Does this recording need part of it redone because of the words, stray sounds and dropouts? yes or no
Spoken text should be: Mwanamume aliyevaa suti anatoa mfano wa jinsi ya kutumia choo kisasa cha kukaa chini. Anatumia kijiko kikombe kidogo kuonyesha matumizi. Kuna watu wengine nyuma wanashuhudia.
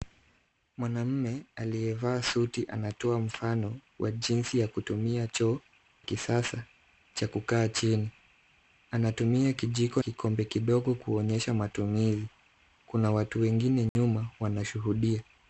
yes